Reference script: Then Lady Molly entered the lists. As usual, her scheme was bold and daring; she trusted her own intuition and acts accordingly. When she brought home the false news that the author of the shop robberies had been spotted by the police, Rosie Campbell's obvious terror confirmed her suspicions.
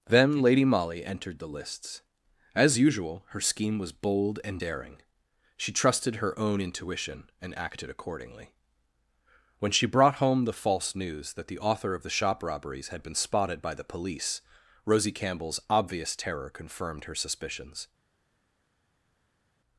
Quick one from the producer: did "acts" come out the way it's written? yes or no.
no